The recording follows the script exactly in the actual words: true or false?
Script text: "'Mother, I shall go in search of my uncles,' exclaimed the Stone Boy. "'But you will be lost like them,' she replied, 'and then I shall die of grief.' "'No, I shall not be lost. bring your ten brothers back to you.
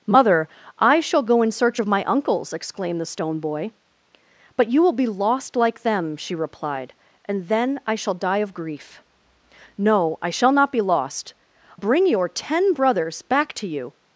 true